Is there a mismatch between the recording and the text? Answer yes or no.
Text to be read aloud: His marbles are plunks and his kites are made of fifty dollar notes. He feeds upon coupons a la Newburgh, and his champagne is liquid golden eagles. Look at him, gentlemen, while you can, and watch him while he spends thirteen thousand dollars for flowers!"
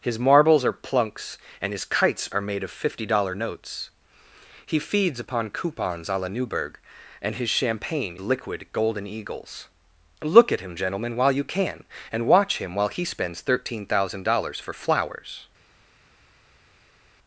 yes